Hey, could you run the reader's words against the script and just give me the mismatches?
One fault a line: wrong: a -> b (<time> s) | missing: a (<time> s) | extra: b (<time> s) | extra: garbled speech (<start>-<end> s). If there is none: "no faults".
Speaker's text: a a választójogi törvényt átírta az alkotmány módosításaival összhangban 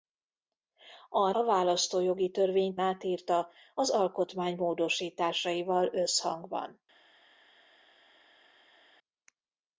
no faults